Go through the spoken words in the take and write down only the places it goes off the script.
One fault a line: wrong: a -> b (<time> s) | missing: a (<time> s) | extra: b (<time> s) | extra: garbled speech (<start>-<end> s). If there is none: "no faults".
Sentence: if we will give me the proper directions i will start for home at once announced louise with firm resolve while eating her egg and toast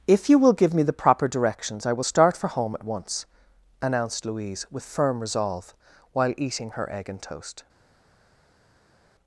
wrong: we -> you (0.3 s)